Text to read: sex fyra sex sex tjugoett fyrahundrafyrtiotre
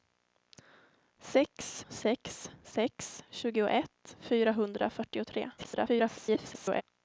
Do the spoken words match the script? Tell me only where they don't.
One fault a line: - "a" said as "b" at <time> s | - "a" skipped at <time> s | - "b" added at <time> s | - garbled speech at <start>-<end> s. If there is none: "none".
- "fyra" skipped at 1.8 s
- garbled speech at 5.6-6.8 s